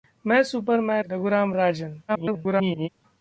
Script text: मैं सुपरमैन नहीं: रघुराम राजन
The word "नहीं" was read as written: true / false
false